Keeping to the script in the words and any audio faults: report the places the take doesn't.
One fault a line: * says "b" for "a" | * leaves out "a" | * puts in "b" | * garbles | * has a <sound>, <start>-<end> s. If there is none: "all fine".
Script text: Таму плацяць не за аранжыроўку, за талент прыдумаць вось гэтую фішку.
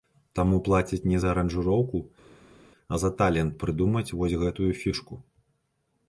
* puts in "а"